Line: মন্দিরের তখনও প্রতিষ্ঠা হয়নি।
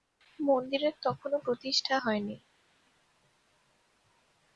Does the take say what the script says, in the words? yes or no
yes